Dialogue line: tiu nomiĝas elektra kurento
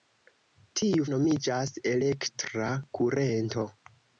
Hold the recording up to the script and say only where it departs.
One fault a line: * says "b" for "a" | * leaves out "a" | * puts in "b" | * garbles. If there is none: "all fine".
all fine